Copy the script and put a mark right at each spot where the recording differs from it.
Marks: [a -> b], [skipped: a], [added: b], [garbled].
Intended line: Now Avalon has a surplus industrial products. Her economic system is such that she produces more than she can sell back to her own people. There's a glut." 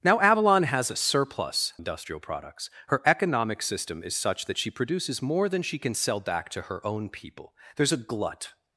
Now Avalon has a surplus industrial products. Her economic system is such that she produces more than she can sell back to her own people. There's a glut."